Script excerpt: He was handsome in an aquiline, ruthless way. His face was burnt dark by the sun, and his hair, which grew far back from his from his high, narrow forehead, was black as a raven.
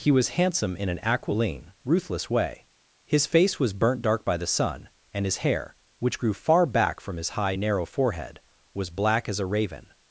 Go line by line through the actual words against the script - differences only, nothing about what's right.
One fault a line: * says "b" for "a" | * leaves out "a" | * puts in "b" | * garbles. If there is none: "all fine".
* leaves out "from his"